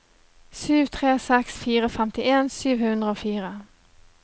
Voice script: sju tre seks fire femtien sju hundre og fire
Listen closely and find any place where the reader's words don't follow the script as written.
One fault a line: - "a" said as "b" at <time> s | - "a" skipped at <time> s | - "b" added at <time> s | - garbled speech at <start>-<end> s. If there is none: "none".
none